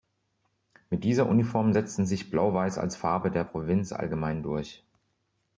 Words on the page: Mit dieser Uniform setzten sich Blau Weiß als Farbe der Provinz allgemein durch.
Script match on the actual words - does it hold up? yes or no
yes